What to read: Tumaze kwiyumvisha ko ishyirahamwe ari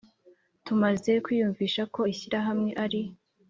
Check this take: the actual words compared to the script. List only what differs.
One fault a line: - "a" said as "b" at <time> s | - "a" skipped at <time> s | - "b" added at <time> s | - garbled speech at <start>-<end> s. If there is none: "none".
none